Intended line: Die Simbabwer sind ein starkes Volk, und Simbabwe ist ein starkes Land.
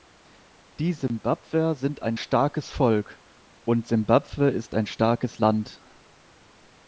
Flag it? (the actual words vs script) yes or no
no